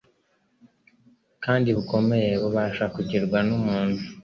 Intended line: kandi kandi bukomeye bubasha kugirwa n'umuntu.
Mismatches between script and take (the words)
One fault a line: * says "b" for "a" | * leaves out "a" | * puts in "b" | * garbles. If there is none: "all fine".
* leaves out "kandi"